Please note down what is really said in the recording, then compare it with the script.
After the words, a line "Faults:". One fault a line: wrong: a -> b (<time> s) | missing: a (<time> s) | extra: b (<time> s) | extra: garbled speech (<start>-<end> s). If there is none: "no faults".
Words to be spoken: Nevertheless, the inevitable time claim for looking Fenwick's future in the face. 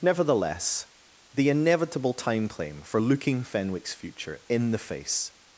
Nevertheless, the inevitable time claim for looking Fenwick's future in the face.
Faults:
no faults